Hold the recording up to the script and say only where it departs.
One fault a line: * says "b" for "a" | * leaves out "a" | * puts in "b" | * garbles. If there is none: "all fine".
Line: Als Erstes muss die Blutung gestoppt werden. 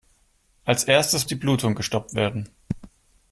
* leaves out "muss"